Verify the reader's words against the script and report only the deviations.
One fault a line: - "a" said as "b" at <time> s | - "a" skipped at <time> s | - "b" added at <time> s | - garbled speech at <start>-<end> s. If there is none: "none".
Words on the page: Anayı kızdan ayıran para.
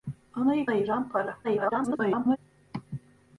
- "kızdan" skipped at 0.7 s
- garbled speech at 1.4-2.4 s